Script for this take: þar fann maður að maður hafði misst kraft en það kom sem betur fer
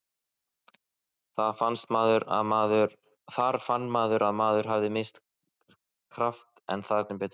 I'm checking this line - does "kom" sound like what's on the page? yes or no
no